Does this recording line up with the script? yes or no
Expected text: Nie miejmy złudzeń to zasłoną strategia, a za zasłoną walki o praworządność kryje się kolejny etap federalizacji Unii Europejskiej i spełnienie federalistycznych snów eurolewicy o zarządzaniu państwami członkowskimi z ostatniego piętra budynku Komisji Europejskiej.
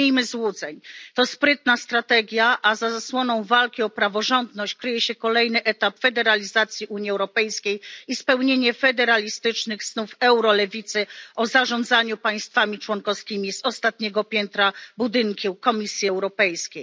no